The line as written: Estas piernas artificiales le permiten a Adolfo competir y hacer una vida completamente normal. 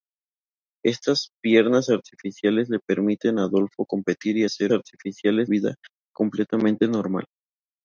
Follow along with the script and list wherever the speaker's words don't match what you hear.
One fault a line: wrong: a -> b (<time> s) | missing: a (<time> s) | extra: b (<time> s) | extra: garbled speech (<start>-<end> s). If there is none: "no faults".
wrong: una -> artificiales (4.7 s)